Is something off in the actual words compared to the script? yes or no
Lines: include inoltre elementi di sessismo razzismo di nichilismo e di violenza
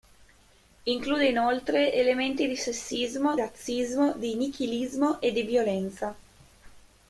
no